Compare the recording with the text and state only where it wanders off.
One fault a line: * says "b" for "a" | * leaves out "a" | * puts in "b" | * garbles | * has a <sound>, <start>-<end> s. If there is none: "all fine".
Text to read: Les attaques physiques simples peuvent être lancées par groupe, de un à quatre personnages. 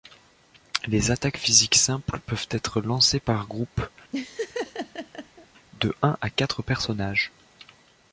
* has a laugh, 4.1-5.5 s